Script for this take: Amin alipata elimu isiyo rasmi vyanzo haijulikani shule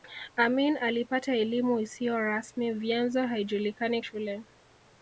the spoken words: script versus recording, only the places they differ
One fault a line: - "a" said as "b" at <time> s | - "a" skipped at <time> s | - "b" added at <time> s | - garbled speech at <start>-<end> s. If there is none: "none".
none